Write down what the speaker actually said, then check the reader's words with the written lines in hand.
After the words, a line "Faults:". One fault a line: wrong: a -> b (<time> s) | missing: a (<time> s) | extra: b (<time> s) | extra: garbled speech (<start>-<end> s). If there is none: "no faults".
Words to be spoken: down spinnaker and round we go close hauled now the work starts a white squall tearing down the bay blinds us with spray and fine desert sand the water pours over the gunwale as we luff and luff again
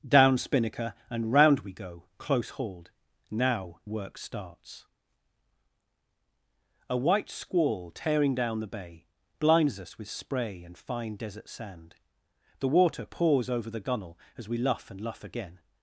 down spinnaker and round we go close hauled now work starts a white squall tearing down the bay blinds us with spray and fine desert sand the water pours over the gunwale as we luff and luff again
Faults:
missing: the (3.8 s)